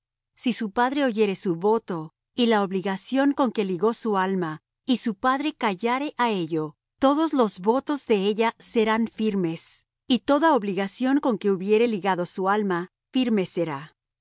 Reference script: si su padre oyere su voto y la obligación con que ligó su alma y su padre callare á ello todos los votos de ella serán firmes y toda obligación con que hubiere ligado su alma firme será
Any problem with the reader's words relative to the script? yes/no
no